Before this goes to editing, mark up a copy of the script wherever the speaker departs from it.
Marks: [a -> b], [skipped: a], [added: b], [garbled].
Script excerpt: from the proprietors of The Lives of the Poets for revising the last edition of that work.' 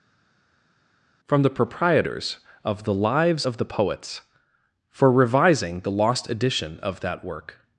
from the proprietors of The Lives of the Poets for revising the [last -> lost] edition of that work.'